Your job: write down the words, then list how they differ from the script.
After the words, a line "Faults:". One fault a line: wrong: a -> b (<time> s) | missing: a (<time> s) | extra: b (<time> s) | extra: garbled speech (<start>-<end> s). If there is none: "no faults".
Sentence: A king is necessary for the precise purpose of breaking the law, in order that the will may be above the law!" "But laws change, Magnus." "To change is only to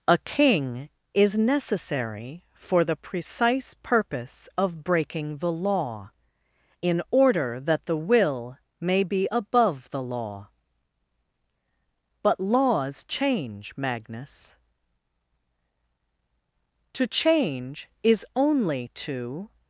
A king is necessary for the precise purpose of breaking the law, in order that the will may be above the law!" "But laws change, Magnus." "To change is only to
Faults:
no faults